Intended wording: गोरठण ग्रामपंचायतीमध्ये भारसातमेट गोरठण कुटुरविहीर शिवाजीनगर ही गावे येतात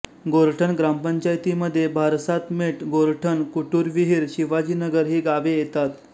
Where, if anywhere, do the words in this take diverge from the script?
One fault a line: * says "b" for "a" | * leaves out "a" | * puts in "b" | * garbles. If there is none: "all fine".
all fine